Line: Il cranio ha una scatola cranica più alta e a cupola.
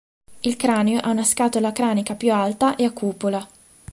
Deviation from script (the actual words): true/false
false